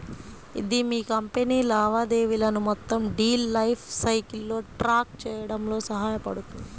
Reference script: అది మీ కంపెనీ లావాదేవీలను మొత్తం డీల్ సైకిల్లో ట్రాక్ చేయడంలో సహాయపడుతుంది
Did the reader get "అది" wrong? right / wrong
wrong